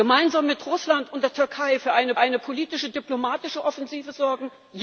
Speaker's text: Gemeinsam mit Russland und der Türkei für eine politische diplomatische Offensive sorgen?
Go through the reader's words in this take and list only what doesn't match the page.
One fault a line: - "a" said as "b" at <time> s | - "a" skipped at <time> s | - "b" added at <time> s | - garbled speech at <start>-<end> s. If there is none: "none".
- "eine" added at 2.2 s